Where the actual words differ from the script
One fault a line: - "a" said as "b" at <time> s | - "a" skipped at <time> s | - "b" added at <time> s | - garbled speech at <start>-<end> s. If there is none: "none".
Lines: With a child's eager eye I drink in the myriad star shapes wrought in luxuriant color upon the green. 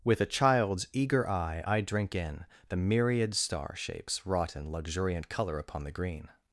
none